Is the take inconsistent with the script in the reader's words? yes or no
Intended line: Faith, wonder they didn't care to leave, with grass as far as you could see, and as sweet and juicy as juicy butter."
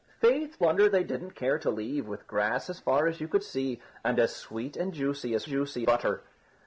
no